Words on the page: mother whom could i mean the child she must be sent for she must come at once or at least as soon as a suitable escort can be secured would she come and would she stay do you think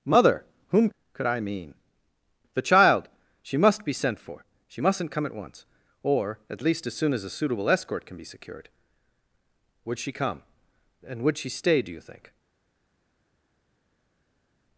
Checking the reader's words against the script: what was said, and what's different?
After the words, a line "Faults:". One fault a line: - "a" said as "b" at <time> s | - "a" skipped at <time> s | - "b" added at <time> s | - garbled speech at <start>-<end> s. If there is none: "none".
mother whom could i mean the child she must be sent for she mustn't come at once or at least as soon as a suitable escort can be secured would she come and would she stay do you think
Faults:
- "must" said as "mustn't" at 4.8 s